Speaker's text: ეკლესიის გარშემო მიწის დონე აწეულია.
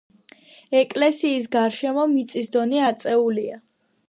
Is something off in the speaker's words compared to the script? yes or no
no